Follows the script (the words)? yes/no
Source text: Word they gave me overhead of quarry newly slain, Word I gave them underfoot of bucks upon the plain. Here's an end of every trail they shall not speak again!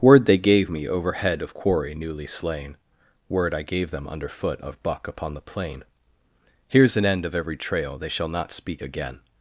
no